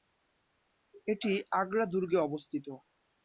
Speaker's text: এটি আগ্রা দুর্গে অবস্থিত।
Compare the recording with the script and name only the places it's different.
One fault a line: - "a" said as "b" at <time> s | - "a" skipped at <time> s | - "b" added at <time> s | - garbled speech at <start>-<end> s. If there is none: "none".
none